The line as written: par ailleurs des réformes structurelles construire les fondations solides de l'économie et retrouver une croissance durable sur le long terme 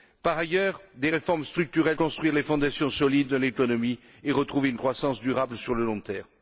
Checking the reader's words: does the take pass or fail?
pass